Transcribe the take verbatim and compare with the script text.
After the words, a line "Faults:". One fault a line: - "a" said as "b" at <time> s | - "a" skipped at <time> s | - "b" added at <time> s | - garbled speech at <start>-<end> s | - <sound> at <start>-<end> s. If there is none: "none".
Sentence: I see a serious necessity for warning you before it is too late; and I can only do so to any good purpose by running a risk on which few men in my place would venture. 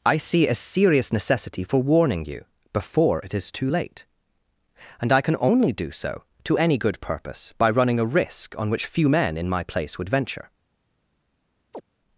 I see a serious necessity for warning you before it is too late; and I can only do so to any good purpose by running a risk on which few men in my place would venture.
Faults:
- chirp at 11.7-11.8 s